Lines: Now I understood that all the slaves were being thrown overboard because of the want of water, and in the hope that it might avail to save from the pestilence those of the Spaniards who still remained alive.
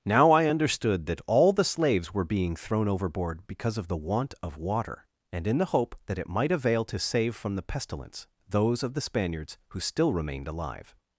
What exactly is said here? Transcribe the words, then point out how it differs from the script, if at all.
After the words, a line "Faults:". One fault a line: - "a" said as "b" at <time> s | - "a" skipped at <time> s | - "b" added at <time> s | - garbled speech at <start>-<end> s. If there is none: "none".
Now I understood that all the slaves were being thrown overboard because of the want of water, and in the hope that it might avail to save from the pestilence those of the Spaniards who still remained alive.
Faults:
none